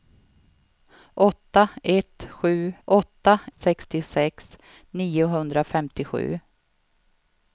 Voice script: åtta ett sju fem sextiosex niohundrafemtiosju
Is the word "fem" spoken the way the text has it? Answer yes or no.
no